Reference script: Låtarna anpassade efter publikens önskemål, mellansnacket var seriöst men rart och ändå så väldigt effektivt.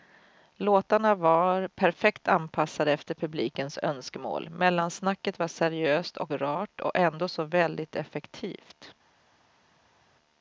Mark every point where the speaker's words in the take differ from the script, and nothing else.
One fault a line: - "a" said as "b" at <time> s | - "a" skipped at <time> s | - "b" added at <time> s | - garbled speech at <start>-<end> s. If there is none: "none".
- "var perfekt" added at 1.1 s
- "men" said as "och" at 6.2 s